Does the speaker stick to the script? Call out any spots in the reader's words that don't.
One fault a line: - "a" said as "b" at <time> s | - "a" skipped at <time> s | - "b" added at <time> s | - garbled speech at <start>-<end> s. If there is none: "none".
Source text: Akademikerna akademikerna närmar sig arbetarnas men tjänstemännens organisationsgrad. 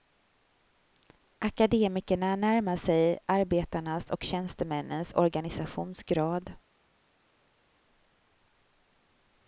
- "akademikerna" skipped at 2.4 s
- "men" said as "och" at 4.1 s